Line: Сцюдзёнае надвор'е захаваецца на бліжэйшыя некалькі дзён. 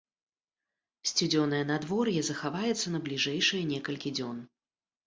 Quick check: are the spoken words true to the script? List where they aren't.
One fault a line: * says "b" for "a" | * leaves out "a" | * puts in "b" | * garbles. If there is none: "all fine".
all fine